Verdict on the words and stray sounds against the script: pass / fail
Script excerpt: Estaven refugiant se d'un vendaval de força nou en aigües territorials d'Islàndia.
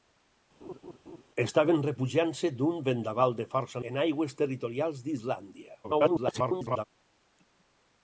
fail